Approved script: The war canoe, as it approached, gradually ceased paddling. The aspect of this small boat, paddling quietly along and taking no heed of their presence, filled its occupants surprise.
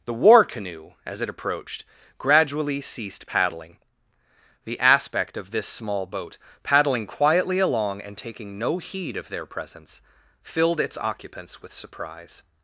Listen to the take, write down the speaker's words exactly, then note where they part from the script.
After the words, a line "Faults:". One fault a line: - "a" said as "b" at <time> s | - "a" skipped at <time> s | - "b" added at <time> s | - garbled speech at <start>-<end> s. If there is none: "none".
The war canoe, as it approached, gradually ceased paddling. The aspect of this small boat, paddling quietly along and taking no heed of their presence, filled its occupants with surprise.
Faults:
- "with" added at 11.6 s